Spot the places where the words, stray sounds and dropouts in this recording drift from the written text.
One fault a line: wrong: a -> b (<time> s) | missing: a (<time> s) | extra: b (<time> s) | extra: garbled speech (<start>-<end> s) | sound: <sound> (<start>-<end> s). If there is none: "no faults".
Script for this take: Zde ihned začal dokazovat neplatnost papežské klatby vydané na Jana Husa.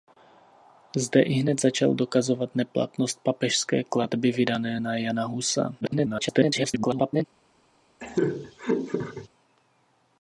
extra: garbled speech (5.8-7.3 s)
sound: laugh (8.0-9.3 s)